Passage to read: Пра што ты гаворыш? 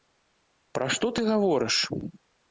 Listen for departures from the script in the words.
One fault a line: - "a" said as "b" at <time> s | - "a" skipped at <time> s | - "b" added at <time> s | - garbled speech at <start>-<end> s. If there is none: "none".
none